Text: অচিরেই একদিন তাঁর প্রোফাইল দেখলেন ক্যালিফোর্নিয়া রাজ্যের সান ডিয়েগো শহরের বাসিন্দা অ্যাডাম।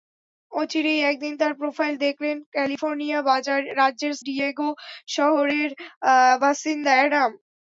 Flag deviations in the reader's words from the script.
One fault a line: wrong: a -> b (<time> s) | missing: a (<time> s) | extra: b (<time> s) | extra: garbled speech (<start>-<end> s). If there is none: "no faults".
missing: সান (4.1 s)